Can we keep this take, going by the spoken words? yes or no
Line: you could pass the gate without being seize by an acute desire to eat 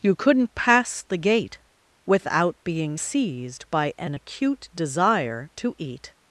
no